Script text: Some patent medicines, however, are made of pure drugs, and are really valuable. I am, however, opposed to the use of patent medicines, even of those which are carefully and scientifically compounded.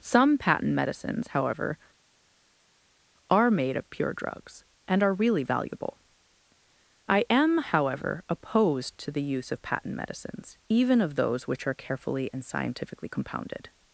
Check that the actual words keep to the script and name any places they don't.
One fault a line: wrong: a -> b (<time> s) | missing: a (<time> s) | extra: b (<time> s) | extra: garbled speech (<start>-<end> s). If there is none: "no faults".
no faults